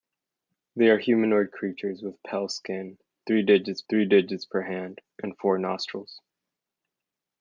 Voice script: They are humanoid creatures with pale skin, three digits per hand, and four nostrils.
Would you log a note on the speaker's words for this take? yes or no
yes